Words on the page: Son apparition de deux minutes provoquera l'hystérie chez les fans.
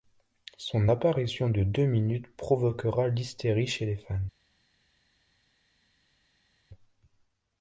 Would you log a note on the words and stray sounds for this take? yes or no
no